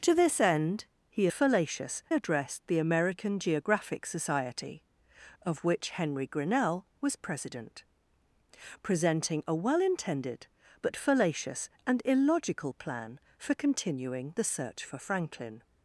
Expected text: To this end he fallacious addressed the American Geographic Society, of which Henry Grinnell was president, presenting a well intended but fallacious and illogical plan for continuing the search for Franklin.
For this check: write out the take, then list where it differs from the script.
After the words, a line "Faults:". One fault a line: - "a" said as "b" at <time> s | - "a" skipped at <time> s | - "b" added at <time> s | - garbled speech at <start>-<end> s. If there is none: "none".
To this end he fallacious addressed the American Geographic Society, of which Henry Grinnell was president, presenting a well intended but fallacious and illogical plan for continuing the search for Franklin.
Faults:
none